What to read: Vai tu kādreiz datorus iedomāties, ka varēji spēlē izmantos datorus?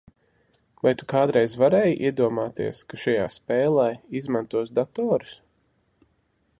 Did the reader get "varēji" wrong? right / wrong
wrong